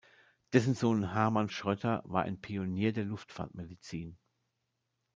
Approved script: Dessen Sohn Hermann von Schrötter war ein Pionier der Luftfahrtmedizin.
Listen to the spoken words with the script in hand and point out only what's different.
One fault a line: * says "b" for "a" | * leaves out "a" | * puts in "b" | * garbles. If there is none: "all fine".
* leaves out "von"